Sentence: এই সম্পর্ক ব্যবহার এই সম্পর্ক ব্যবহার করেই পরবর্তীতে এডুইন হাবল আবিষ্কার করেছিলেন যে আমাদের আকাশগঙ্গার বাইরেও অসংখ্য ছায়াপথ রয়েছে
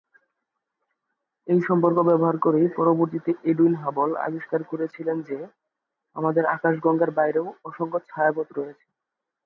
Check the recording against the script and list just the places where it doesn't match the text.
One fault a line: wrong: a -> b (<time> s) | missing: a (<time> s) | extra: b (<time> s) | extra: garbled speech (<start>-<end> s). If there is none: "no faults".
missing: এই সম্পর্ক ব্যবহার (2.4 s)